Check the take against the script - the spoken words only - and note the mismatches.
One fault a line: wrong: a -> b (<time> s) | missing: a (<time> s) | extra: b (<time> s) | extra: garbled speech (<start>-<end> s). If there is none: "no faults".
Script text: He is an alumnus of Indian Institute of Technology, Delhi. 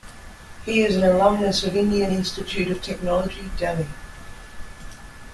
no faults